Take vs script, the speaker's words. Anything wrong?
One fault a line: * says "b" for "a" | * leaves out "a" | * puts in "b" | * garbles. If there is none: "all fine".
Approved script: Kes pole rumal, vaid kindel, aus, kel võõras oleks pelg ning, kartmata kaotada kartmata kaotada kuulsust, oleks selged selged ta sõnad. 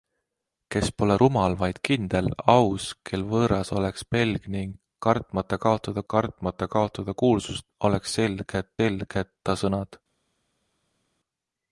all fine